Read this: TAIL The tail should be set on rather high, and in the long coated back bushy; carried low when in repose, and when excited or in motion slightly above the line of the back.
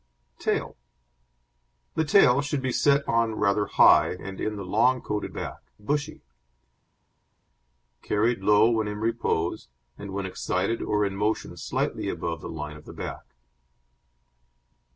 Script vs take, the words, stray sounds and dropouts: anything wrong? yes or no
no